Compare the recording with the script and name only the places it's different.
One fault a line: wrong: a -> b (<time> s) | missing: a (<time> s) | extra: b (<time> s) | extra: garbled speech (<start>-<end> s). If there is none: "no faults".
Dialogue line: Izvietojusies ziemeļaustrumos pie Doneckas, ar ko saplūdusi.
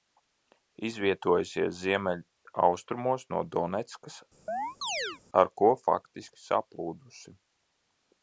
wrong: pie -> no (3.4 s)
extra: faktiski (5.9 s)